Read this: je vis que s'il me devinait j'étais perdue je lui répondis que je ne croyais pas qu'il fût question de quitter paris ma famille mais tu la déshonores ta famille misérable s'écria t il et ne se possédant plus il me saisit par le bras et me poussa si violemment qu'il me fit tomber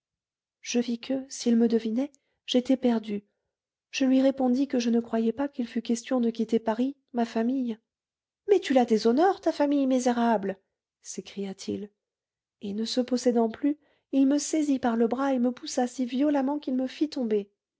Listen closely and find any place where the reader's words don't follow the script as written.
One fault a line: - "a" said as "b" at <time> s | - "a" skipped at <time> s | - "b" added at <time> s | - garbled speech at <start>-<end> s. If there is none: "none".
none